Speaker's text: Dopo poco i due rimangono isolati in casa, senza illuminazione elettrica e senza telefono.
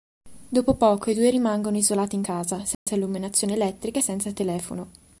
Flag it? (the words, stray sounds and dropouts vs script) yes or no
yes